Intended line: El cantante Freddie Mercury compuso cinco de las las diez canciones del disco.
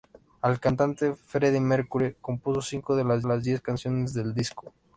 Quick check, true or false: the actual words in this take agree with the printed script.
true